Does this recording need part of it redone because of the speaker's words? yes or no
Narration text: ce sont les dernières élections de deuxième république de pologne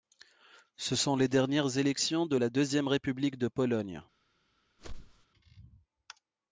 yes